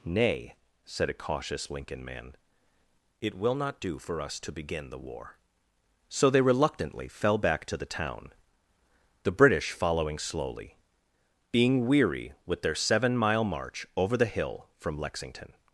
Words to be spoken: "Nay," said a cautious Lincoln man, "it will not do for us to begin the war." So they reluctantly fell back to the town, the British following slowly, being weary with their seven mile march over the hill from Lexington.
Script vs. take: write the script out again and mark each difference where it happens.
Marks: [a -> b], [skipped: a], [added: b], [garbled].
"Nay," said a cautious Lincoln man, "it will not do for us to begin the war." So they reluctantly fell back to the town, the British following slowly, being weary with their seven mile march over the hill from Lexington.